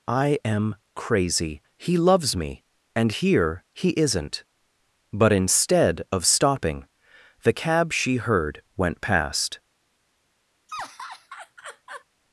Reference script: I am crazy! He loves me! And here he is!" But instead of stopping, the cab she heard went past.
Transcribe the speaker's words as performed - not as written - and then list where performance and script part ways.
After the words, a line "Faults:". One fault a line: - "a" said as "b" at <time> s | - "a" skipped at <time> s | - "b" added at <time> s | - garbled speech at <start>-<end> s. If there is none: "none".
I am crazy! He loves me! And here he isn't!" But instead of stopping, the cab she heard went past.
Faults:
- "is" said as "isn't" at 3.9 s